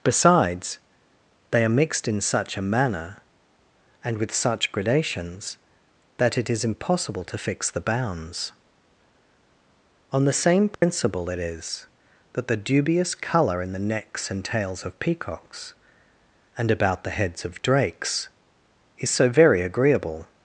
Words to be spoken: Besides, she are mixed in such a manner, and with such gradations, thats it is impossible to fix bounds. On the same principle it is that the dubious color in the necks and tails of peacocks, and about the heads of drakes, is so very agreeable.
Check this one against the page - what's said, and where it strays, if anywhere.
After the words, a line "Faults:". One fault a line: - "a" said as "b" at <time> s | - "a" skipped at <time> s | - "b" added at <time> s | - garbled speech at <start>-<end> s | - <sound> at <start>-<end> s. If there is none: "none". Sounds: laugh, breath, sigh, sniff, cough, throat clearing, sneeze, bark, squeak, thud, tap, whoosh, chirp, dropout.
Besides, they are mixed in such a manner, and with such gradations, that it is impossible to fix the bounds. On the same principle it is that the dubious color in the necks and tails of peacocks, and about the heads of drakes, is so very agreeable.
Faults:
- "she" said as "they" at 1.5 s
- "thats" said as "that" at 6.2 s
- "the" added at 7.7 s
- dropout at 10.7-10.8 s